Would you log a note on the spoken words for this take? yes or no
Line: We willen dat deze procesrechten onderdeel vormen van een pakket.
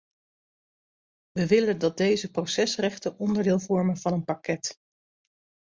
no